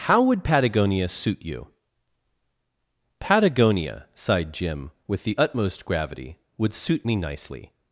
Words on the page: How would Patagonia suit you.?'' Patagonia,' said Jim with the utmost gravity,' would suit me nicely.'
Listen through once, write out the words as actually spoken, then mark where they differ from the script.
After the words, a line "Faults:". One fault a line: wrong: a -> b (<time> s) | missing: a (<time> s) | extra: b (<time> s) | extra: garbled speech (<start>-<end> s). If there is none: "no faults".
How would Patagonia suit you.?'' Patagonia,' sighed Jim with the utmost gravity,' would suit me nicely.'
Faults:
wrong: said -> sighed (4.2 s)